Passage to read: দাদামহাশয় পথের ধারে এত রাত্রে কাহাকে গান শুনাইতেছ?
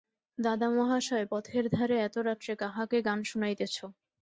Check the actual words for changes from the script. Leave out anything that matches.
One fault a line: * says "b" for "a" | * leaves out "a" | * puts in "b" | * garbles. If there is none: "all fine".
all fine